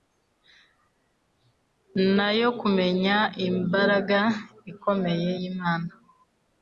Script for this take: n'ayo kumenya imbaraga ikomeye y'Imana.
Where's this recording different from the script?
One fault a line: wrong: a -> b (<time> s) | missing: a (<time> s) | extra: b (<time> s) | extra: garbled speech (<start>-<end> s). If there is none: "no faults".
no faults